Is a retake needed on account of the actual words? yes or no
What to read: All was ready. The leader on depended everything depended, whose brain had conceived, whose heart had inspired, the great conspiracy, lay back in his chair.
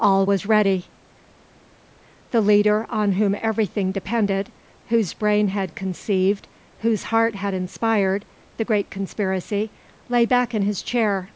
yes